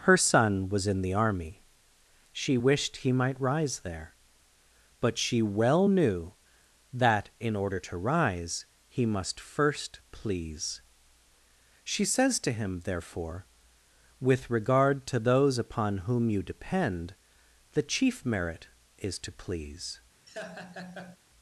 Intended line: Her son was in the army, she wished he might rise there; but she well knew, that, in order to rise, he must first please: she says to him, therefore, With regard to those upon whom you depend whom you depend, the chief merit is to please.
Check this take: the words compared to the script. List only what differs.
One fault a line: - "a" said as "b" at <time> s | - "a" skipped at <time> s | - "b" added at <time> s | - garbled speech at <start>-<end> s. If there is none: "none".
- "whom you depend" skipped at 17.1 s